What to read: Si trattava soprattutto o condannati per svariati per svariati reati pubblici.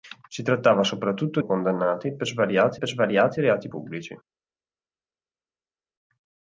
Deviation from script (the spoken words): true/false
false